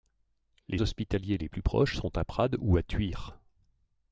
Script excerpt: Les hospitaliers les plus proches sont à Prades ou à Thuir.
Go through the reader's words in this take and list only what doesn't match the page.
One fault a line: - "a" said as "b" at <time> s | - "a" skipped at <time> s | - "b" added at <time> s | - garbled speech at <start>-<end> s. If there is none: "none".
none